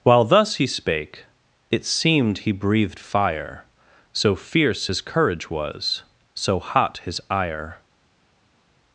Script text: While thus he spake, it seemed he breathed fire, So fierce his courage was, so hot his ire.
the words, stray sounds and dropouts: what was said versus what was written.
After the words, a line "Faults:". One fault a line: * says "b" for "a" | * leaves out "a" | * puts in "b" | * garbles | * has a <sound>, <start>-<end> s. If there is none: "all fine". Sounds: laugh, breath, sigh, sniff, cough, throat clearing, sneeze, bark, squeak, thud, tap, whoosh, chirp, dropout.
While thus he spake, it seemed he breathed fire, So fierce his courage was, so hot his ire.
Faults:
all fine